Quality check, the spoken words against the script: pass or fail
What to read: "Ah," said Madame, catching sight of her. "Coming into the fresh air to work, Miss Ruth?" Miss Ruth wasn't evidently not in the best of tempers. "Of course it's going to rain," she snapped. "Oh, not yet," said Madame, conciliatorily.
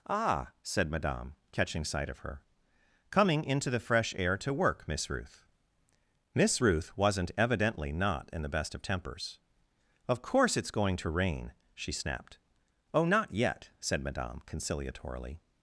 pass